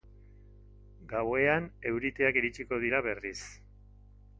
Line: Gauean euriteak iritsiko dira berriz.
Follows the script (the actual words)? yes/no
yes